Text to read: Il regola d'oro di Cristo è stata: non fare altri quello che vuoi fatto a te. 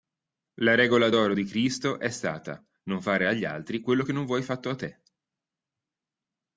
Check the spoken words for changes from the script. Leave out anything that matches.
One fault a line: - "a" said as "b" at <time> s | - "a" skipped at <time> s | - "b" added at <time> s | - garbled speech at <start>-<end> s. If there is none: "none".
- "Il" said as "La" at 0.6 s
- "agli" added at 3.3 s
- "non" added at 4.1 s